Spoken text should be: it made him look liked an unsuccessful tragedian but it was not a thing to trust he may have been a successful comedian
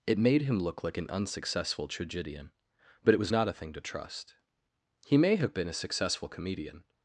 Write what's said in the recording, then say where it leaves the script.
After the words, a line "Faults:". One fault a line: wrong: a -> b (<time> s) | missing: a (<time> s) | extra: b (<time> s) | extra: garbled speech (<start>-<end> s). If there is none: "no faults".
it made him look like an unsuccessful tragedian but it was not a thing to trust he may have been a successful comedian
Faults:
wrong: liked -> like (0.8 s)